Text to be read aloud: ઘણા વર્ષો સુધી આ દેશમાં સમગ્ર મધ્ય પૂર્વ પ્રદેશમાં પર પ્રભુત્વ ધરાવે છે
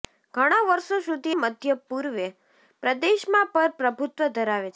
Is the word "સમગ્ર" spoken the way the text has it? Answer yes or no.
no